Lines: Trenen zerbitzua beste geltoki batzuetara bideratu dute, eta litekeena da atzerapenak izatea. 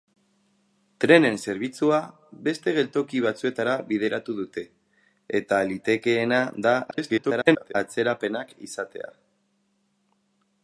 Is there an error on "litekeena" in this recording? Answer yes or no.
no